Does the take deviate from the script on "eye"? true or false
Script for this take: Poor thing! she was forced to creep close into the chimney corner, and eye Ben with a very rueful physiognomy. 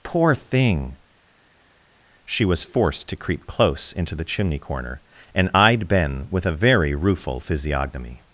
true